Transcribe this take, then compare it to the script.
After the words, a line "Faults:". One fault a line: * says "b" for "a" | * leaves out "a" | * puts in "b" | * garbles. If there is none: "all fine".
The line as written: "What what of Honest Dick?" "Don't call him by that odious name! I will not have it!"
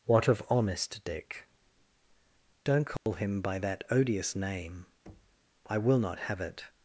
"What of Honest Dick?" "Don't call him by that odious name! I will not have it!"
Faults:
* leaves out "what"